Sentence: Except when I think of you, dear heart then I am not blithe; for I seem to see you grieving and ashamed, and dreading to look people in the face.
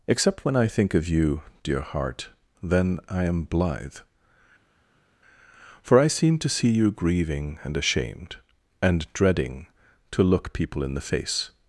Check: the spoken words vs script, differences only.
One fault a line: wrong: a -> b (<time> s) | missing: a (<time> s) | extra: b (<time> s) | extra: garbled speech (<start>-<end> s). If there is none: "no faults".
missing: not (3.4 s)